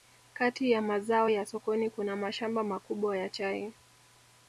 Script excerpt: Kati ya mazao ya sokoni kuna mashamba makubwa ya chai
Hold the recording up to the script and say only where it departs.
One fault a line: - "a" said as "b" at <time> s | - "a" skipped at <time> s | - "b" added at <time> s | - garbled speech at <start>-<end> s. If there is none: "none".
none